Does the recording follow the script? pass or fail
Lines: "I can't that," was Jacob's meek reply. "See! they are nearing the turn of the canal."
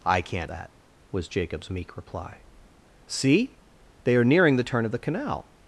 pass